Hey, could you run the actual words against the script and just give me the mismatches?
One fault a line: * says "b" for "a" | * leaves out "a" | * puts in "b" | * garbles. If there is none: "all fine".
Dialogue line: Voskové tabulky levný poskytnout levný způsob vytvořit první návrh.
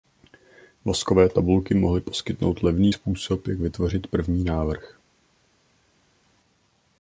* says "mohly" for "levný"
* puts in "jak"